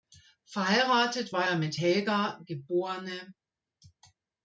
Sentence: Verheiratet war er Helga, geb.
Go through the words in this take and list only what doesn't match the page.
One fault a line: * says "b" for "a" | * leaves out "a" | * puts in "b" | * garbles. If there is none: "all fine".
* puts in "mit"